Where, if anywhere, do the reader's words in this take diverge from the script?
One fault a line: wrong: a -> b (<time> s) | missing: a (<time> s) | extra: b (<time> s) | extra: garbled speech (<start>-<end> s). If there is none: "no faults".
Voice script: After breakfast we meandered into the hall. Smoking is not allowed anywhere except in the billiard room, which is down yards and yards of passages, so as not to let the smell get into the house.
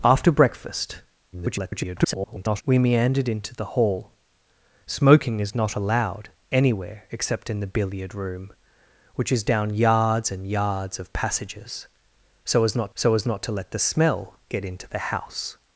extra: garbled speech (1.3-2.6 s)
extra: so as not (12.9 s)